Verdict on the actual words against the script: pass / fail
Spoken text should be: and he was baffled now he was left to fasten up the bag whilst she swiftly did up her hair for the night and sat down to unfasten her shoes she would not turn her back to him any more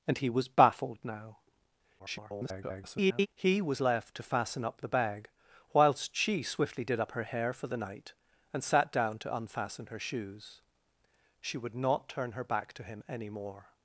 fail